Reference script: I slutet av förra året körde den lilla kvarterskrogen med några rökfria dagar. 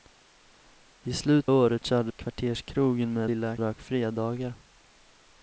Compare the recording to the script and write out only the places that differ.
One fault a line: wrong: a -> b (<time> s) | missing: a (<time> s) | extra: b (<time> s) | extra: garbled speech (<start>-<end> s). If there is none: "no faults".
missing: av förra (1.5 s)
missing: den lilla (2.1 s)
wrong: några -> lilla (3.3 s)